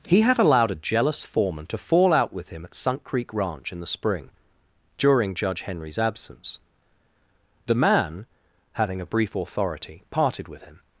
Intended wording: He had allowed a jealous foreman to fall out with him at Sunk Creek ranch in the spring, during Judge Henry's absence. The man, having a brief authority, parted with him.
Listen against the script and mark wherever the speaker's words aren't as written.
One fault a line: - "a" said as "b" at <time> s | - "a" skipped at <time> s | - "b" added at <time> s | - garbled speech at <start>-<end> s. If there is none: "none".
none